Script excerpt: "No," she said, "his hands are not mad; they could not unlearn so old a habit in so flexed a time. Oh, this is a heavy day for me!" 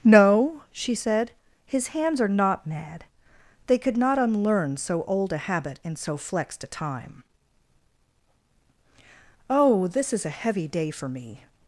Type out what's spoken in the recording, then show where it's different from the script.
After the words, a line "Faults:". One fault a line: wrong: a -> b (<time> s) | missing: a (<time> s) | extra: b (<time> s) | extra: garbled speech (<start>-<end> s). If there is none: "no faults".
"No," she said, "his hands are not mad; they could not unlearn so old a habit in so flexed a time. Oh, this is a heavy day for me!"
Faults:
no faults